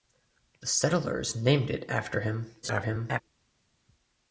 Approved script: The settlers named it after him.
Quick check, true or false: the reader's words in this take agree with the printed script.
false